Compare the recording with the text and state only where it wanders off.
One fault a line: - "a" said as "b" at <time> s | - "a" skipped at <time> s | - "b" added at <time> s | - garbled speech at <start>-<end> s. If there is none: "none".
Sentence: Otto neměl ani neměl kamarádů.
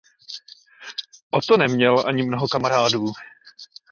- "neměl" said as "mnoho" at 2.2 s